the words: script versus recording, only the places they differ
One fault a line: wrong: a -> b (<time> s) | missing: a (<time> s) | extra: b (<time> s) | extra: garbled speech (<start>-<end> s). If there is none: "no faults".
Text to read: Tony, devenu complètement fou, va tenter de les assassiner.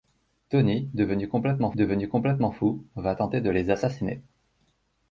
extra: devenu complètement (1.8 s)